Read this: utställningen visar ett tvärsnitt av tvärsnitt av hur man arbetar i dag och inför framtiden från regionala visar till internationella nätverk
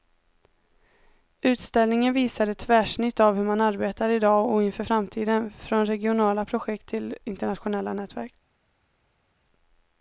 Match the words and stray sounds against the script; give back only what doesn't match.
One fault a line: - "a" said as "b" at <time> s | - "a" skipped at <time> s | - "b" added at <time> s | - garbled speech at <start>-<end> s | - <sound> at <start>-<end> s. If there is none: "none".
- "tvärsnitt av" skipped at 3.4 s
- "visar" said as "projekt" at 6.4 s